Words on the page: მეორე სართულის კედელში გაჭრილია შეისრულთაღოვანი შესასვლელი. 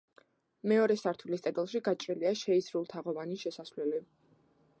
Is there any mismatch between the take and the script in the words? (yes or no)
no